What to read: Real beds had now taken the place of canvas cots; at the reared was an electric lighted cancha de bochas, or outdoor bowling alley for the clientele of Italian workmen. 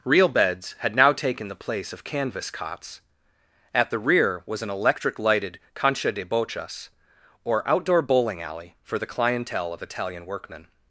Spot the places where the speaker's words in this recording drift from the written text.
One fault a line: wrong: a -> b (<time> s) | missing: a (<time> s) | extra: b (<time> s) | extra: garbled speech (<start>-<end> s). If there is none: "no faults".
wrong: reared -> rear (4.0 s)